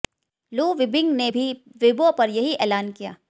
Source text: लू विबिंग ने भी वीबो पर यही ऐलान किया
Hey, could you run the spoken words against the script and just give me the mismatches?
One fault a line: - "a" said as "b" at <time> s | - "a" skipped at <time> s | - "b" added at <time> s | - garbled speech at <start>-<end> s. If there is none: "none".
none